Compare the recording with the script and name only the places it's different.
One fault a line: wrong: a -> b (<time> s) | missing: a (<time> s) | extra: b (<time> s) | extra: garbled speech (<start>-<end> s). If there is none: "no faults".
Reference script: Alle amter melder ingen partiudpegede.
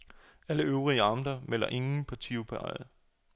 extra: øvrige (0.6 s)